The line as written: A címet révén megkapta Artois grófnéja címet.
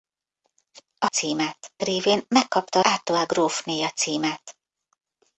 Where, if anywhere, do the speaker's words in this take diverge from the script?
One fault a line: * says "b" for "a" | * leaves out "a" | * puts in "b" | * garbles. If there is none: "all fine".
all fine